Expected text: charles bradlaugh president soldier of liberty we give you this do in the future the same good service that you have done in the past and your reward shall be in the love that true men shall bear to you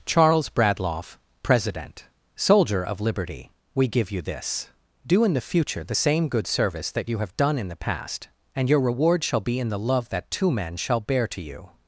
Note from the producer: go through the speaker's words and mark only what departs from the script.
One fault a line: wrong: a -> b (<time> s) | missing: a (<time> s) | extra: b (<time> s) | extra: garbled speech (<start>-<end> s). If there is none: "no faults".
wrong: true -> two (10.3 s)